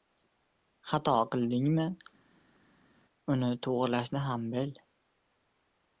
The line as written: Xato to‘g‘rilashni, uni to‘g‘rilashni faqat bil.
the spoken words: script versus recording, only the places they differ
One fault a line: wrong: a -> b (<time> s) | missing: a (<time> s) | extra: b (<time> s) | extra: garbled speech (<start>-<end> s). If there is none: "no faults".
wrong: to‘g‘rilashni -> qildingmi (1.4 s)
wrong: faqat -> ham (4.3 s)